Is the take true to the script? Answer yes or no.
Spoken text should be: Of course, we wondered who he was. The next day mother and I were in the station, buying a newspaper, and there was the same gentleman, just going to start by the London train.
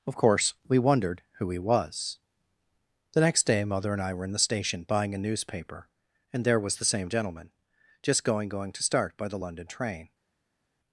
no